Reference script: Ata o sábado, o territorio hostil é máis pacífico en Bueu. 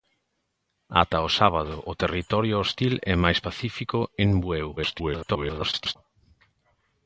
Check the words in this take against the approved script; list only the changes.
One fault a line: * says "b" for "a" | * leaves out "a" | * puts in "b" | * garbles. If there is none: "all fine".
* garbles